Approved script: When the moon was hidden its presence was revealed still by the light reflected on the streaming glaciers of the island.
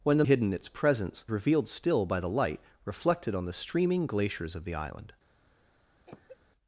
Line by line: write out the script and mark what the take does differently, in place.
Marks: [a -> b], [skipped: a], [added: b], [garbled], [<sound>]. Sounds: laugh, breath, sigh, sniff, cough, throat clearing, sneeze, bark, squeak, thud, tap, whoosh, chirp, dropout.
When the [skipped: moon was] hidden its presence [skipped: was] revealed still by the light reflected on the streaming glaciers of the island. [cough]